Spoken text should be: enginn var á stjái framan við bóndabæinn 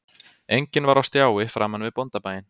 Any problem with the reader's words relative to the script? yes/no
no